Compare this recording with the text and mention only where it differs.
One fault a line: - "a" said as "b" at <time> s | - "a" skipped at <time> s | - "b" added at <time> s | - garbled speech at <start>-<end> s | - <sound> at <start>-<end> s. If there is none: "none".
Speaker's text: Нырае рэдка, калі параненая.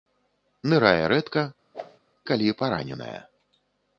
- whoosh at 1.7-2.0 s